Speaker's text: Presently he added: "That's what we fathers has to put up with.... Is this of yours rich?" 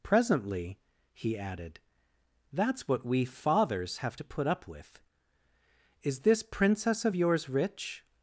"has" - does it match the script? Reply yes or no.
no